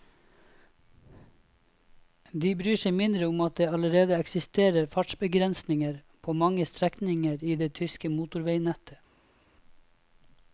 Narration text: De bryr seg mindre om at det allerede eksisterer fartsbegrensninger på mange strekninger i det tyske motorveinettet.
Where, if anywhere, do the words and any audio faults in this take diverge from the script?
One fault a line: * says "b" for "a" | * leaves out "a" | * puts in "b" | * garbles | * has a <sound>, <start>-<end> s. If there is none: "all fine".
all fine